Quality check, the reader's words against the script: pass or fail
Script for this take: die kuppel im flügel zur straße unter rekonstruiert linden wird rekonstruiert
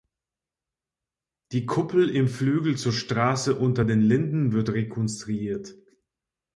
fail